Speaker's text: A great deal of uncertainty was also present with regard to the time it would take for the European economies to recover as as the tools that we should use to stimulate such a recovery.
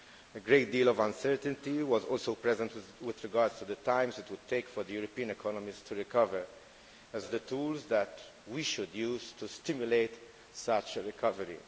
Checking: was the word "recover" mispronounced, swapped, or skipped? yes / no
no